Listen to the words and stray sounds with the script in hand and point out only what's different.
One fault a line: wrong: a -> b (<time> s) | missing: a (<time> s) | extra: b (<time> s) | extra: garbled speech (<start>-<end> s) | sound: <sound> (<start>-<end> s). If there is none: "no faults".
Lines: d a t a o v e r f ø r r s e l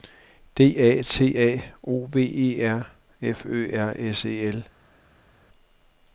missing: r (3.9 s)